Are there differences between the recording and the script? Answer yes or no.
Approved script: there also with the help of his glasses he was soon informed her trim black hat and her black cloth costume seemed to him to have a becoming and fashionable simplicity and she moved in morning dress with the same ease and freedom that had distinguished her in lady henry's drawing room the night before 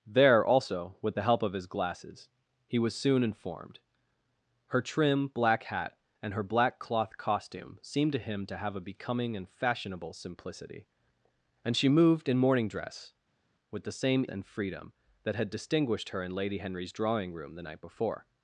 yes